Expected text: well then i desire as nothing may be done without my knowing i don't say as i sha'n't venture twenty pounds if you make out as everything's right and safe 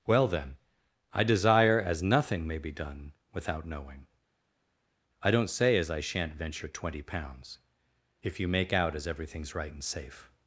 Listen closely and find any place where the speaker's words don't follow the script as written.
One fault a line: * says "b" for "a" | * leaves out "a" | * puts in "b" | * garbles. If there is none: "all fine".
* leaves out "my"